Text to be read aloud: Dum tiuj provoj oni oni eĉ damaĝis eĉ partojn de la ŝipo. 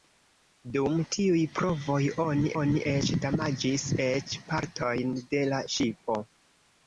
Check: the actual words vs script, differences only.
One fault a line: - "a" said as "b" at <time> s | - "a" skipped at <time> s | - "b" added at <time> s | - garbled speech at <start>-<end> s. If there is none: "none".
none